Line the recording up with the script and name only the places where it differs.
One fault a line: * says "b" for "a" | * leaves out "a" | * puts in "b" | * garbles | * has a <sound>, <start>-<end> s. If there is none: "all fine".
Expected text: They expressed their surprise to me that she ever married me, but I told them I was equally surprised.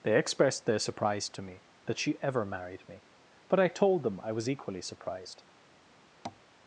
* has a tap, 6.2-6.4 s